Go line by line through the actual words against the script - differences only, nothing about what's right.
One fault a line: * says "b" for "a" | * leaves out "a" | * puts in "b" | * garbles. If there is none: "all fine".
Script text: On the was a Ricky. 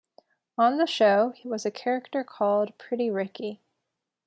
* puts in "show"
* puts in "character called Pretty"